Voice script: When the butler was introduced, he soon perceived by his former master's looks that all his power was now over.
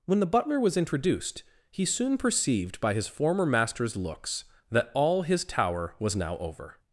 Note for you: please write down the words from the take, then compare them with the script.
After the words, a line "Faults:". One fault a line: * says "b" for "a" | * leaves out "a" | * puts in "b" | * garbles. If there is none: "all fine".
When the butler was introduced, he soon perceived by his former master's looks that all his tower was now over.
Faults:
* says "tower" for "power"